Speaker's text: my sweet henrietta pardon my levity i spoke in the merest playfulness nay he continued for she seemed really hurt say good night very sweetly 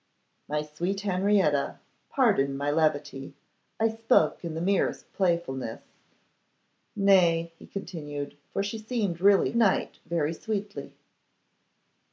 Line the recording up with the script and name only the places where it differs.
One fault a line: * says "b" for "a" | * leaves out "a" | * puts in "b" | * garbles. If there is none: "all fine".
* leaves out "hurt say good"